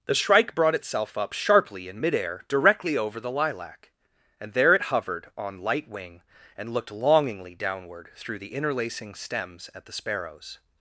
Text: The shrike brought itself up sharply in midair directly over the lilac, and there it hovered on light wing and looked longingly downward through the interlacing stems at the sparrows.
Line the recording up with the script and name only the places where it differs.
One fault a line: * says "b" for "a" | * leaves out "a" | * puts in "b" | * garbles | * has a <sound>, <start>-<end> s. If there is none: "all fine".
all fine